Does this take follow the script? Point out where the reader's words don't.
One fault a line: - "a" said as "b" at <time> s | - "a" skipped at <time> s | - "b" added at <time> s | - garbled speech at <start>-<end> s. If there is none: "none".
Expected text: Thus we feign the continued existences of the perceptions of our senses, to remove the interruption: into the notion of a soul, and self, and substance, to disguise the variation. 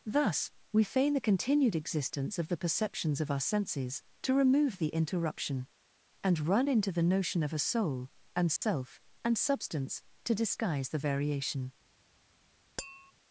- "existences" said as "existence" at 1.8 s
- "and run" added at 6.2 s